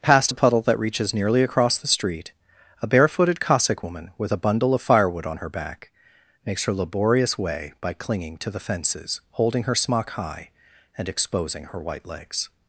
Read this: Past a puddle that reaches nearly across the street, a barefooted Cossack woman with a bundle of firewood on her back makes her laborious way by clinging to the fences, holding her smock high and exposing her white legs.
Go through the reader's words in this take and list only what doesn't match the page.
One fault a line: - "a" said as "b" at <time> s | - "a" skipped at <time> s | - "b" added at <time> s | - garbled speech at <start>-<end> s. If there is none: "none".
none